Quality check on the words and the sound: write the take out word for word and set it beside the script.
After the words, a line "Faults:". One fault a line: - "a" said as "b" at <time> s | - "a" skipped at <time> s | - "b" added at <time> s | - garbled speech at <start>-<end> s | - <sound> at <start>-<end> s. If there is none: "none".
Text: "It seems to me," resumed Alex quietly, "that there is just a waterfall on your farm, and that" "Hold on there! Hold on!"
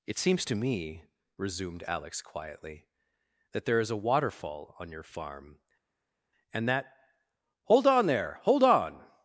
"It seems to me," resumed Alex quietly, "that there is a waterfall on your farm, and that" "Hold on there! Hold on!"
Faults:
- "just" skipped at 3.9 s